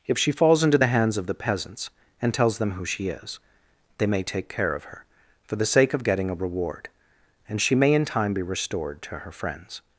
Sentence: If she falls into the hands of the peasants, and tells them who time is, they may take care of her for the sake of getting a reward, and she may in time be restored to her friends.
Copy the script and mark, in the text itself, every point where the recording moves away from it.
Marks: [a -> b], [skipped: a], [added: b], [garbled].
If she falls into the hands of the peasants, and tells them who [time -> she] is, they may take care of her for the sake of getting a reward, and she may in time be restored to her friends.